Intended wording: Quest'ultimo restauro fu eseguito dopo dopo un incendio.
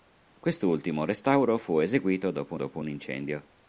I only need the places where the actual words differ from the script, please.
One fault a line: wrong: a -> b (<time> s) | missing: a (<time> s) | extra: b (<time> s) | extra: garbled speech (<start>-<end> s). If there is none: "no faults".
no faults